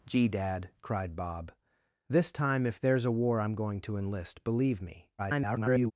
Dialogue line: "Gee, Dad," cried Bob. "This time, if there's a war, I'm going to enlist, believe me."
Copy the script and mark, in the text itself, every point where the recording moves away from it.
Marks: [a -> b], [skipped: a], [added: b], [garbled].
"Gee, Dad," cried Bob. "This time, if there's a war, I'm going to enlist, believe me." [garbled]